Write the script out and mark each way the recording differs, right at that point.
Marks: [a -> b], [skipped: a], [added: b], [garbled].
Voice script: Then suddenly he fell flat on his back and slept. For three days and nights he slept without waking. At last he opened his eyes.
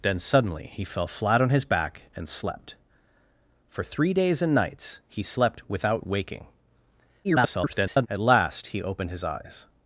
Then suddenly he fell flat on his back and slept. For three days and nights he slept without waking. [garbled] At last he opened his eyes.